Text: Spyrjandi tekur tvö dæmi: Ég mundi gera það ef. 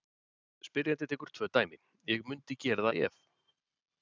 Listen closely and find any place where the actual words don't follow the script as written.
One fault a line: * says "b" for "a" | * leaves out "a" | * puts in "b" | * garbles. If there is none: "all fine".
all fine